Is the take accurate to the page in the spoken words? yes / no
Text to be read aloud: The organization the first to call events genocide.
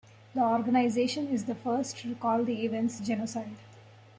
no